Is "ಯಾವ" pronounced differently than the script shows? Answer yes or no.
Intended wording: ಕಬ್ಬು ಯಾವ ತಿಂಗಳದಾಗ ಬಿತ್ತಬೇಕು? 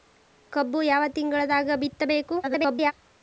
no